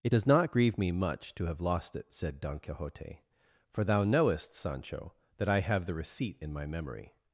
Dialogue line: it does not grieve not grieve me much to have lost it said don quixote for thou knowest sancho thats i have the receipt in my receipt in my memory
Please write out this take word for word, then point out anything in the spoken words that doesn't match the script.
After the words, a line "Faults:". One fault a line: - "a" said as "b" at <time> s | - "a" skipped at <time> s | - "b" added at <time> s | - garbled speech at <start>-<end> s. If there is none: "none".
it does not grieve me much to have lost it said don quixote for thou knowest sancho that i have the receipt in my memory
Faults:
- "not grieve" skipped at 0.8 s
- "thats" said as "that" at 5.4 s
- "receipt in my" skipped at 6.7 s